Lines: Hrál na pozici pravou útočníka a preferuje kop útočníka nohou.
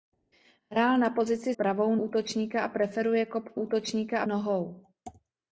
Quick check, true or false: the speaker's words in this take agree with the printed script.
true